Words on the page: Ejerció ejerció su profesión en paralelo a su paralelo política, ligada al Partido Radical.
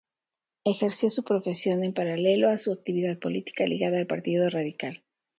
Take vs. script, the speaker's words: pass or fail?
fail